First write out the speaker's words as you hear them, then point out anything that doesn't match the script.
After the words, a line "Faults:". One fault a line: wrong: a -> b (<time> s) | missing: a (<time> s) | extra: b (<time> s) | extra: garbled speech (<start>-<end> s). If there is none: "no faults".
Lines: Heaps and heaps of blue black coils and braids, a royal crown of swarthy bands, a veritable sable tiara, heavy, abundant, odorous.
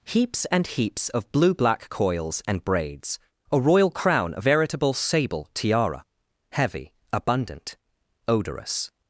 Heaps and heaps of blue black coils and braids, a royal crown of veritable sable tiara, heavy, abundant, odorous.
Faults:
missing: swarthy bands a (4.5 s)